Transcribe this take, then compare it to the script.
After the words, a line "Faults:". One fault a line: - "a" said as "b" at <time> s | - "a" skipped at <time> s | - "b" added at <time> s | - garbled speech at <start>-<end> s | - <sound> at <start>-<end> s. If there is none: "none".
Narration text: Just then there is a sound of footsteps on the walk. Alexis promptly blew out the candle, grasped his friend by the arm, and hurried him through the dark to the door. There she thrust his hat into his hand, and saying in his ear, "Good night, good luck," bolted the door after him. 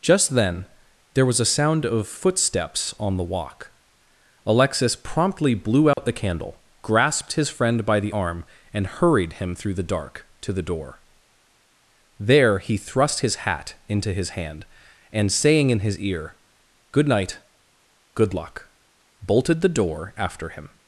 Just then there was a sound of footsteps on the walk. Alexis promptly blew out the candle, grasped his friend by the arm, and hurried him through the dark to the door. There he thrust his hat into his hand, and saying in his ear, "Good night, good luck," bolted the door after him.
Faults:
- "is" said as "was" at 1.2 s
- dropout at 5.9-6.0 s
- "she" said as "he" at 12.6 s